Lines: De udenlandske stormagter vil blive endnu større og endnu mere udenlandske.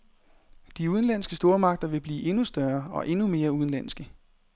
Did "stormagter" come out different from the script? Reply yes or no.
no